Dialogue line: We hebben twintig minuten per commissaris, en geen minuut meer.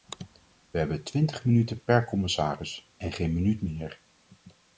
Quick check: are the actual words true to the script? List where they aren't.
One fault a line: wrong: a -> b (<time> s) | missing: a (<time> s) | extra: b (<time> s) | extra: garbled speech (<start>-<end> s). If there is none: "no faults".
no faults